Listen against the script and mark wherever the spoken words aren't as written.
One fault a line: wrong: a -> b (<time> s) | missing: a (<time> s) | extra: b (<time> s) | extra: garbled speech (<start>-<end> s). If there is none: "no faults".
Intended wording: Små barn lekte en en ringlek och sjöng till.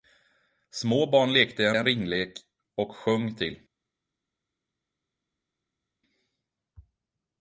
no faults